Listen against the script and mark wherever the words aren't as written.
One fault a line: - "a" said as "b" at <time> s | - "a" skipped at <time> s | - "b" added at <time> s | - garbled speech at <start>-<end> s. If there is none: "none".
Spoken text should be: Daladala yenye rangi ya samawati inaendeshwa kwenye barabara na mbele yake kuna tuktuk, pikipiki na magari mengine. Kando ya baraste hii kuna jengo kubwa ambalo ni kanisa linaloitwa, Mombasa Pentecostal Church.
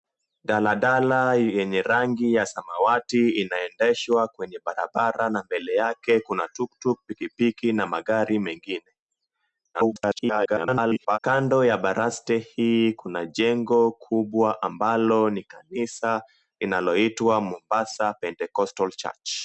- garbled speech at 9.7-11.2 s